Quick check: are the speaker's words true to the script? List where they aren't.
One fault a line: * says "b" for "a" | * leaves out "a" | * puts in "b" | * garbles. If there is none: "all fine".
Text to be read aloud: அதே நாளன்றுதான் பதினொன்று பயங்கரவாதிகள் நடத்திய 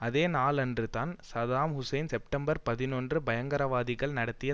* puts in "சதாம் ஹுசேன் செப்டம்பர்"